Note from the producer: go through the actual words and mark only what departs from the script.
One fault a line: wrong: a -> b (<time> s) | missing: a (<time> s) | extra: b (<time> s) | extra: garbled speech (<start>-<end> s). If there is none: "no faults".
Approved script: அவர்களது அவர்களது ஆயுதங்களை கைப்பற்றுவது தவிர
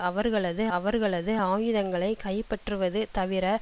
no faults